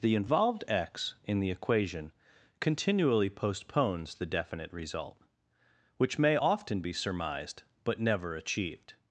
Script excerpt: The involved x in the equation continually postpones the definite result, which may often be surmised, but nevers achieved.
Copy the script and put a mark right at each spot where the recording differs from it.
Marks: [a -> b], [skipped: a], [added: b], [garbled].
The involved x in the equation continually postpones the definite result, which may often be surmised, but [nevers -> never] achieved.